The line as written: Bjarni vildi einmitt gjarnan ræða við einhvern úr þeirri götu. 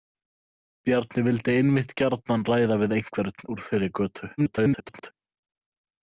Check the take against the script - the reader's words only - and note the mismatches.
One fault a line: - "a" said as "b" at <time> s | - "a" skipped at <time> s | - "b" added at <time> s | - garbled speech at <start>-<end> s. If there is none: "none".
- garbled speech at 4.4-5.1 s